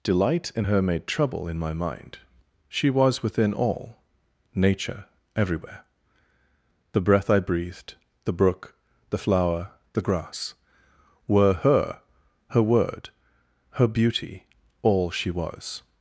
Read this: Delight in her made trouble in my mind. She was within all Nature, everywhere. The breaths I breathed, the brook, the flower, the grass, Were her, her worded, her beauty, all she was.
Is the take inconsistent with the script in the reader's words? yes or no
yes